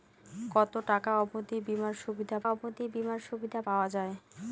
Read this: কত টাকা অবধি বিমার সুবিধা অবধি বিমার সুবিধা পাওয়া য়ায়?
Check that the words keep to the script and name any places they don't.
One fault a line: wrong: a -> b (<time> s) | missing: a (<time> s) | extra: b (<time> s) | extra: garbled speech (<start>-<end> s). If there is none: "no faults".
no faults